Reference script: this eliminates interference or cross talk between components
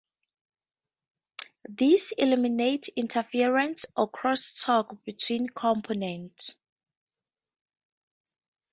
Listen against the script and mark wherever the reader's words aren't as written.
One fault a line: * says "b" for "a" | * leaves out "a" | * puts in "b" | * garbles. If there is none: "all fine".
all fine